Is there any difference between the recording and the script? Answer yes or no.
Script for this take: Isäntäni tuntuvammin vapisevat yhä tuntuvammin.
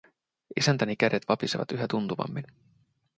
yes